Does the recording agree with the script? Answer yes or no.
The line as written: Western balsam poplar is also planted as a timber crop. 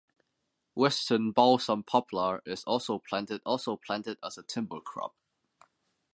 no